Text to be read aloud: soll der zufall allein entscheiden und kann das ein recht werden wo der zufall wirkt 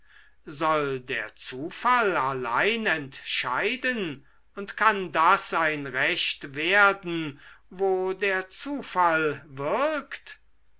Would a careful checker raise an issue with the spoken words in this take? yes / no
no